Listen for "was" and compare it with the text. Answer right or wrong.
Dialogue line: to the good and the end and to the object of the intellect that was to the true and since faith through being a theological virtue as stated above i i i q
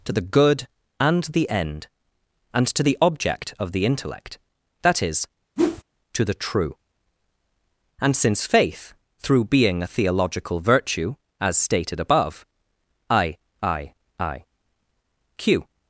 wrong